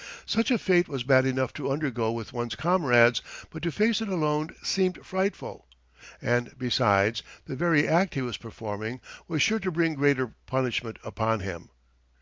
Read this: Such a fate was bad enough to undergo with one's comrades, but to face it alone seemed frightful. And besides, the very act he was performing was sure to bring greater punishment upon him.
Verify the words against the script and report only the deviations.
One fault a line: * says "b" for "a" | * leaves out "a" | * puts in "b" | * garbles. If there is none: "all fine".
all fine